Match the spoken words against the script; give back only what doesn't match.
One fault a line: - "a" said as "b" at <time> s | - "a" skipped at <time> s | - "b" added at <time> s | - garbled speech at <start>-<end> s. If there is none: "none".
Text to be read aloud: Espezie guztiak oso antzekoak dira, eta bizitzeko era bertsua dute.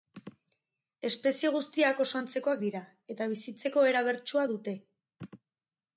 none